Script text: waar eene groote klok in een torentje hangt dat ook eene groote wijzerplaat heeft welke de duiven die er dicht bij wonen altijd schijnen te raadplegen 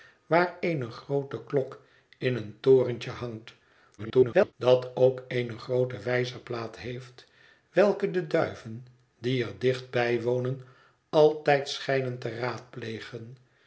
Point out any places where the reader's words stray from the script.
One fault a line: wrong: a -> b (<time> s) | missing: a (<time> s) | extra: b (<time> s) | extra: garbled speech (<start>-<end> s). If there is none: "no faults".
extra: garbled speech (4.0-4.5 s)